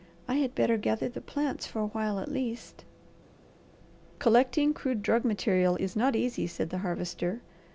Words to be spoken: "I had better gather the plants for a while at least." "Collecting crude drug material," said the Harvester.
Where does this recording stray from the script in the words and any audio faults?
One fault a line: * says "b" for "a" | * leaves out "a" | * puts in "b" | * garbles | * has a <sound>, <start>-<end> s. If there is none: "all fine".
* puts in "is not easy"